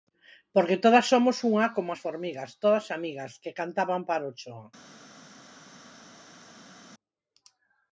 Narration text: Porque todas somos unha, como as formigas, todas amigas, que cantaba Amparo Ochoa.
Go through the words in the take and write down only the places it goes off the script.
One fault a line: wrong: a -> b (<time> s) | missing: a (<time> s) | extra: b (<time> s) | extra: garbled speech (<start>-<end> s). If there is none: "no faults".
no faults